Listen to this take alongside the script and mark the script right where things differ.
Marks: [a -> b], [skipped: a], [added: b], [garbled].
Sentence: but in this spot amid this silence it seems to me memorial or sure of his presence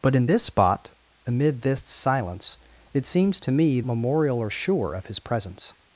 but in this spot amid this silence it seems to me memorial or sure of his presence